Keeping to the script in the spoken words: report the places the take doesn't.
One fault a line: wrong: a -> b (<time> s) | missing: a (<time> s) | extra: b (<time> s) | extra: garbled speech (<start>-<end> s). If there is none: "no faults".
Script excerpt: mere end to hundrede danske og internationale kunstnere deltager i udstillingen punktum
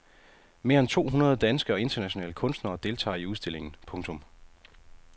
no faults